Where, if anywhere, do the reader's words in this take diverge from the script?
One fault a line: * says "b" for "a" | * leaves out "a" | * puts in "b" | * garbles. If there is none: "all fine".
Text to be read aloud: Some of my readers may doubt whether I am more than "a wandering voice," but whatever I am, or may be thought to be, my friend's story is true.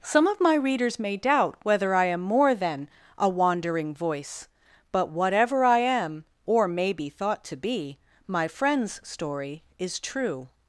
all fine